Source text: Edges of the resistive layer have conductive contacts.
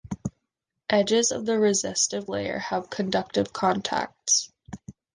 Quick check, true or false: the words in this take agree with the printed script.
true